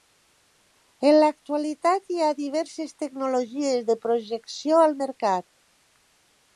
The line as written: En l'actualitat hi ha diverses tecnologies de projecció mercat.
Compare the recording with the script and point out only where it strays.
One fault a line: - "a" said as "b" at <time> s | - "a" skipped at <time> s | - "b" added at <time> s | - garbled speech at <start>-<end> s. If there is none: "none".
- "al" added at 4.9 s